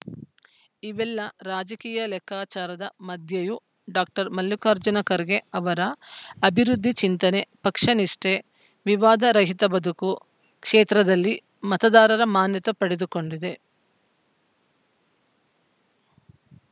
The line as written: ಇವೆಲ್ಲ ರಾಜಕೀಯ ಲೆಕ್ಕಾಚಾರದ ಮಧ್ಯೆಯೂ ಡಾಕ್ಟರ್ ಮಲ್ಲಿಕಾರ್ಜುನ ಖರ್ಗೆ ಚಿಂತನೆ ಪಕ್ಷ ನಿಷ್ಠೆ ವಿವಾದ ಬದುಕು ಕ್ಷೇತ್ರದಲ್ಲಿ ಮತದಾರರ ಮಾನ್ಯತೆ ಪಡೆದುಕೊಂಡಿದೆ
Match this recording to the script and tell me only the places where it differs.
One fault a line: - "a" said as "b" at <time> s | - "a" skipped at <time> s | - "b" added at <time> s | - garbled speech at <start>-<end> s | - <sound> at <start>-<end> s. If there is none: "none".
- "ಅವರ ಅಭಿವೃದ್ಧಿ" added at 5.5 s
- "ರಹಿತ" added at 9.3 s